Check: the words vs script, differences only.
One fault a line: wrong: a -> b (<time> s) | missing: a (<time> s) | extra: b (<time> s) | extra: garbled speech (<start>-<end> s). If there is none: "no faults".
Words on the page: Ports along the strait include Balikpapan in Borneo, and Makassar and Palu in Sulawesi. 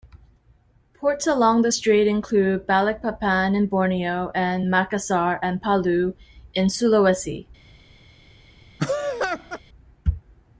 no faults